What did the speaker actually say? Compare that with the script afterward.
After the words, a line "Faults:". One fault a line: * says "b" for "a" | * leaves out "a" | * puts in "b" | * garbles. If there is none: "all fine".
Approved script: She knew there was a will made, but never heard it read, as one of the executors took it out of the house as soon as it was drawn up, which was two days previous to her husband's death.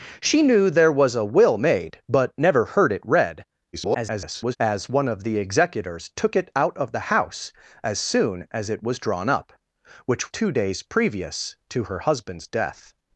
She knew there was a will made, but never heard it read, [garbled] as one of the executors took it out of the house as soon as it was drawn up, which two days previous to her husband's death.
Faults:
* garbles
* leaves out "was"